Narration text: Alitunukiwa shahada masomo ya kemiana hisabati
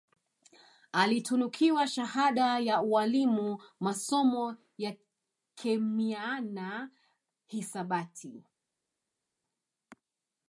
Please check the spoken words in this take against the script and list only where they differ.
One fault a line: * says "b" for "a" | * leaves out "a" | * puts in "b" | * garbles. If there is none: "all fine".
* puts in "ya ualimu"